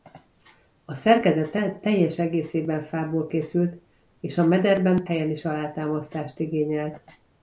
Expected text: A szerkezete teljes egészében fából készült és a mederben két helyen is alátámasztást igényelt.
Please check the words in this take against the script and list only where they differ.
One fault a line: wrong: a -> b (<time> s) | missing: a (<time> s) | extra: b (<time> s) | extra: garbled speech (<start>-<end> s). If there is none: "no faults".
missing: két (5.0 s)